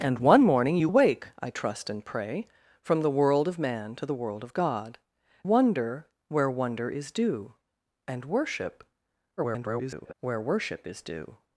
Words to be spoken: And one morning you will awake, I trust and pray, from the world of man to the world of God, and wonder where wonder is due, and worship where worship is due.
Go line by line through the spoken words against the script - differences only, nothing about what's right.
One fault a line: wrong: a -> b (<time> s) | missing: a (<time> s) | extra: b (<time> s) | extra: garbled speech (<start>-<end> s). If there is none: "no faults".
missing: will (0.9 s)
missing: and (5.0 s)
extra: garbled speech (9.4-10.1 s)